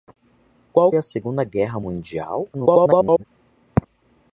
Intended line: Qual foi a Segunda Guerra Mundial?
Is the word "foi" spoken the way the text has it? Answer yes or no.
no